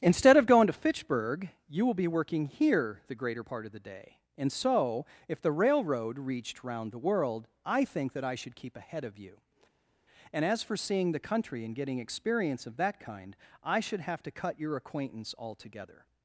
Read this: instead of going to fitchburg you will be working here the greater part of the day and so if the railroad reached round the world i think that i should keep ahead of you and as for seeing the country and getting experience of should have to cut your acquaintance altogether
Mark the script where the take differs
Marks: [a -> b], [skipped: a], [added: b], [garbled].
instead of going to fitchburg you will be working here the greater part of the day and so if the railroad reached round the world i think that i should keep ahead of you and as for seeing the country and getting experience of [added: that kind i] should have to cut your acquaintance altogether